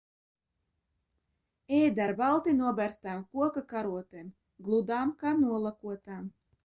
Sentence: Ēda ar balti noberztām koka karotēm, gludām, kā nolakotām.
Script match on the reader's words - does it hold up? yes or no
yes